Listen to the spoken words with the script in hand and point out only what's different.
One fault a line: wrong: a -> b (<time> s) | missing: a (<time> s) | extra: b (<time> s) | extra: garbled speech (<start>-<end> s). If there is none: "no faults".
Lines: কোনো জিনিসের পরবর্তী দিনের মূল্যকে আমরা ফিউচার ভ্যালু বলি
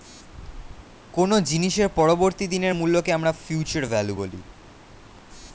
no faults